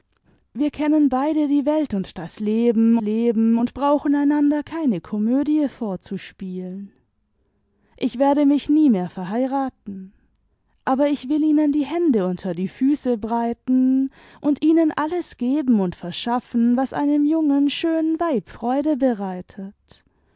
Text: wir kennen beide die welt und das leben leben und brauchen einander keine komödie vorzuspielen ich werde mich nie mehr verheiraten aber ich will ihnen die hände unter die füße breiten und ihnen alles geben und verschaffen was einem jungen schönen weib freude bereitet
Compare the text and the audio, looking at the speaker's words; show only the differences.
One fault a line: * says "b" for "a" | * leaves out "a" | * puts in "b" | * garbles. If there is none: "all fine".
all fine